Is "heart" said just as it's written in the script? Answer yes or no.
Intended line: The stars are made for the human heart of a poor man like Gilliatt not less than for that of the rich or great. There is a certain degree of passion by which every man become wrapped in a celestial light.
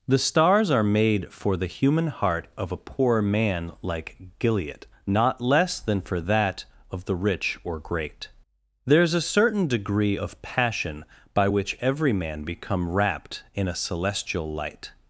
yes